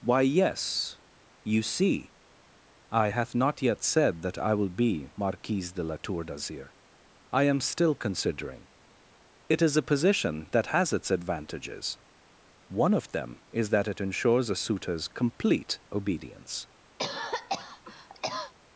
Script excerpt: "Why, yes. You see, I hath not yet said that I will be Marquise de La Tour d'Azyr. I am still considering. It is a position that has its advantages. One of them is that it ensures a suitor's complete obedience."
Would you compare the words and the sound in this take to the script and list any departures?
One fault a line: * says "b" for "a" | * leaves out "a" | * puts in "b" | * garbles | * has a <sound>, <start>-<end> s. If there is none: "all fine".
* has a cough, 17.0-18.5 s